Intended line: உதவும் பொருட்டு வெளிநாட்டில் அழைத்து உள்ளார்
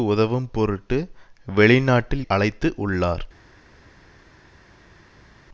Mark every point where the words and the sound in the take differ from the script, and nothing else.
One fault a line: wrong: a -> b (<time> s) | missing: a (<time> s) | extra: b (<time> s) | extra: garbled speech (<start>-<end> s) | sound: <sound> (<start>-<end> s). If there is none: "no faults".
no faults